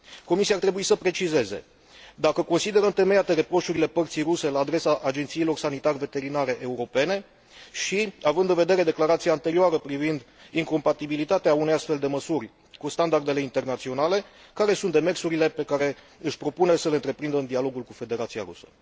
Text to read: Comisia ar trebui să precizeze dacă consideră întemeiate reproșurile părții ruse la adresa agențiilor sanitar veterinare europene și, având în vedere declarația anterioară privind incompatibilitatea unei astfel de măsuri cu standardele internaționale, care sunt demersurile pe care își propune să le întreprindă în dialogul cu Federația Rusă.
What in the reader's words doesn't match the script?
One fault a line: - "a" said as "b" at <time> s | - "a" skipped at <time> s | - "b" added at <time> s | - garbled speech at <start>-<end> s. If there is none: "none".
none